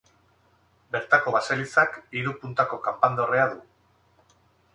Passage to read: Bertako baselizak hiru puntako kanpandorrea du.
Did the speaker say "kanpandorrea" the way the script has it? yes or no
yes